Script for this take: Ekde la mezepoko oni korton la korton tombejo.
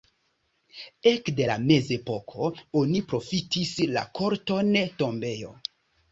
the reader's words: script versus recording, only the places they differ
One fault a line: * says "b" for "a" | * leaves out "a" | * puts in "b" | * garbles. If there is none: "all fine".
* says "profitis" for "korton"